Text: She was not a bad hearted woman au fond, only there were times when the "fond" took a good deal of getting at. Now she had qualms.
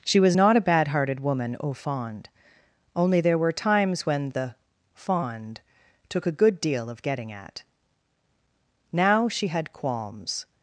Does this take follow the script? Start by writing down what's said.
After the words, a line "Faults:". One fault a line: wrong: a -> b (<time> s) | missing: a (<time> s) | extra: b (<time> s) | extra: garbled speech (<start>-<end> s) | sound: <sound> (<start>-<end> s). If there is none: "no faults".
She was not a bad hearted woman au fond, only there were times when the "fond" took a good deal of getting at. Now she had qualms.
Faults:
no faults